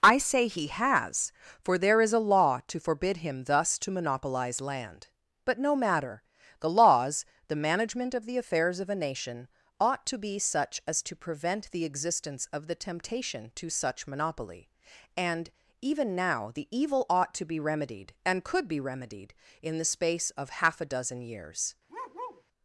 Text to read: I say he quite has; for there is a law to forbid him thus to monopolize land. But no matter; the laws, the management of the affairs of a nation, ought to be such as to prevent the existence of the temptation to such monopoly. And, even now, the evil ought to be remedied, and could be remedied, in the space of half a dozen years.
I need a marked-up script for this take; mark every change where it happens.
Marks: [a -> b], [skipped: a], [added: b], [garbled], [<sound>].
I say he [skipped: quite] has; for there is a law to forbid him thus to monopolize land. But no matter; the laws, the management of the affairs of a nation, ought to be such as to prevent the existence of the temptation to such monopoly. And, even now, the evil ought to be remedied, and could be remedied, in the space of half a dozen years. [bark]